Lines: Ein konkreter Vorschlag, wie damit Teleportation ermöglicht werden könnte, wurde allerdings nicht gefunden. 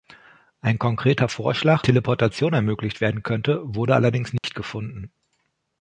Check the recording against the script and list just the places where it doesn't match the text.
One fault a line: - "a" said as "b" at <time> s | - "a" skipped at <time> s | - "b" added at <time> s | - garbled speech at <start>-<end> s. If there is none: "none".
- "wie damit" skipped at 1.9 s